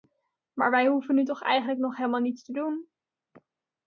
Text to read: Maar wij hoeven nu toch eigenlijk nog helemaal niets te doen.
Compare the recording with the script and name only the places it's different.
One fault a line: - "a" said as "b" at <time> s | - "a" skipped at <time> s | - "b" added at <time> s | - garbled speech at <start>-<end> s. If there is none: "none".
none